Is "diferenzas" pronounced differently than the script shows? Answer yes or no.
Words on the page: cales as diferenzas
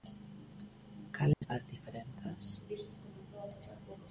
no